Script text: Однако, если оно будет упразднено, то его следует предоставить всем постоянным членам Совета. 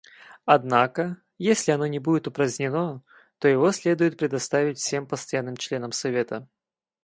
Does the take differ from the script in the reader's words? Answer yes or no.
yes